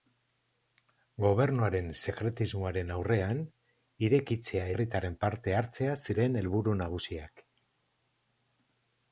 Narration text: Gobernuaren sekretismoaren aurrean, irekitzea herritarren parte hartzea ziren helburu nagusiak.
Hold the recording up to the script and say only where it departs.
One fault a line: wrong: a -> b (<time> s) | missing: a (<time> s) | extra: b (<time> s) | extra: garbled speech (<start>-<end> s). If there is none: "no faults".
no faults